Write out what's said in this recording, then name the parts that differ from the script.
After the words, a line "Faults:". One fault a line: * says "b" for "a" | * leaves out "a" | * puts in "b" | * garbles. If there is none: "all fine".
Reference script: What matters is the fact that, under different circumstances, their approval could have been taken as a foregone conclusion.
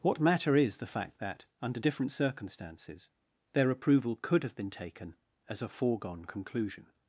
What matter is the fact that, under different circumstances, their approval could have been taken as a foregone conclusion.
Faults:
* says "matter" for "matters"